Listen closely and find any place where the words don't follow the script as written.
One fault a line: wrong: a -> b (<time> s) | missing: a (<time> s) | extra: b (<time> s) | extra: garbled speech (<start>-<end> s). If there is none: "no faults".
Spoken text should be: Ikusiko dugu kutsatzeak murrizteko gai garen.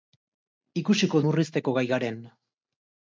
missing: dugu kutsatzeak (1.2 s)